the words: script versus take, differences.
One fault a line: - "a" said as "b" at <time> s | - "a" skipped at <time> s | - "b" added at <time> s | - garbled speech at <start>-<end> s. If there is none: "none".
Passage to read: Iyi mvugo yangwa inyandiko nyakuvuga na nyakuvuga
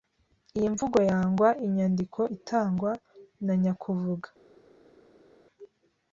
- "nyakuvuga" said as "itangwa" at 2.4 s